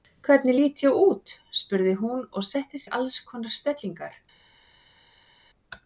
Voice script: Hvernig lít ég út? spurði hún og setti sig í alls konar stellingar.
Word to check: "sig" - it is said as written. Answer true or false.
false